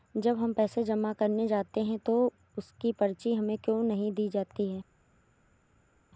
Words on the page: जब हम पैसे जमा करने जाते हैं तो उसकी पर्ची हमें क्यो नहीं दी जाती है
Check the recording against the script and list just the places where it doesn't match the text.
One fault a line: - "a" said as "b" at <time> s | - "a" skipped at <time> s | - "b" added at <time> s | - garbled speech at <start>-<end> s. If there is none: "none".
none